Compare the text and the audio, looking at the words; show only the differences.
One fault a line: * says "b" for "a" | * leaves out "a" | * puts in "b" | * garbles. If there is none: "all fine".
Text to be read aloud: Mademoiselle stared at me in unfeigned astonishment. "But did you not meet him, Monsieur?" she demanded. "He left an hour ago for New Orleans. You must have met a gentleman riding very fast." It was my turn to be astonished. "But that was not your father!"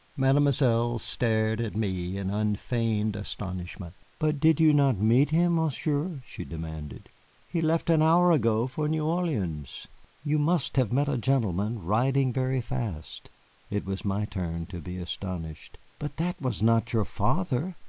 all fine